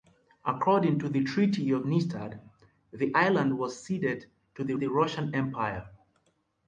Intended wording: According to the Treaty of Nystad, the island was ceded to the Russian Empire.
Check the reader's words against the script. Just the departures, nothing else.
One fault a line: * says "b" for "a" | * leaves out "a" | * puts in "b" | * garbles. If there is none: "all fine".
* puts in "the"